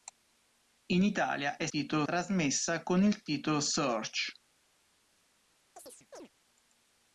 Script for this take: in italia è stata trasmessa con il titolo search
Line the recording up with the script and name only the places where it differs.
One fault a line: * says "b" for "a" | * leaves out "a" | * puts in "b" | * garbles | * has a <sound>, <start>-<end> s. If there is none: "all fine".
* says "titolo" for "stata"
* has a chirp, 5.8-6.3 s